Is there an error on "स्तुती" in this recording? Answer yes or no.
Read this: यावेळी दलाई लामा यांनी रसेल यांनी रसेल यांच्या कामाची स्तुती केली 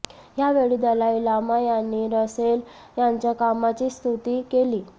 no